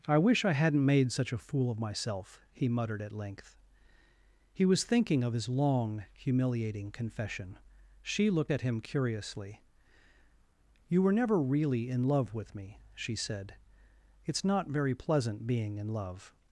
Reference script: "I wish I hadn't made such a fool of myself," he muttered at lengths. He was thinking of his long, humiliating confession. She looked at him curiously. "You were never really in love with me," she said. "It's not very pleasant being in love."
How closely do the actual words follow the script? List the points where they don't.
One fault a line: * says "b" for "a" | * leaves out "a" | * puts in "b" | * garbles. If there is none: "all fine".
* says "length" for "lengths"